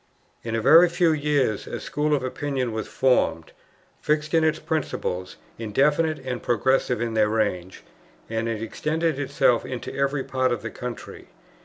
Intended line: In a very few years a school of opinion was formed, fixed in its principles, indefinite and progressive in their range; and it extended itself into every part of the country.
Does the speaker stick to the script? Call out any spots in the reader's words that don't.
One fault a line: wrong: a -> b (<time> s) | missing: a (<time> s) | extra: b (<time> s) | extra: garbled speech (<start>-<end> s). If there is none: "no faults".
no faults